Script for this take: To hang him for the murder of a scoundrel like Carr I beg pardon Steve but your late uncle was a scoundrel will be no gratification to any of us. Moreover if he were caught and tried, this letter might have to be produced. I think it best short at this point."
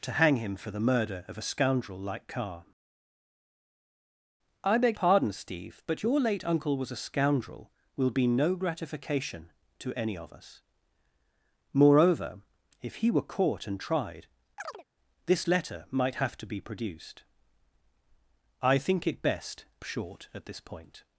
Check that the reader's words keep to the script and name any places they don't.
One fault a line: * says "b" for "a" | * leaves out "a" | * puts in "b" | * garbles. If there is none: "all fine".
all fine